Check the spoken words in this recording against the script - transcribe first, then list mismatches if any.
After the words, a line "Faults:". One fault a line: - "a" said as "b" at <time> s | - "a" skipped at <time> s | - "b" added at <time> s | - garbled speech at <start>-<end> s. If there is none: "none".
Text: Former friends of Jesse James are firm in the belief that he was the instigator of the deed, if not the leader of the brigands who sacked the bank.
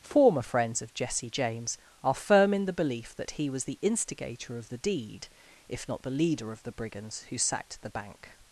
Former friends of Jesse James are firm in the belief that he was the instigator of the deed, if not the leader of the brigands who sacked the bank.
Faults:
none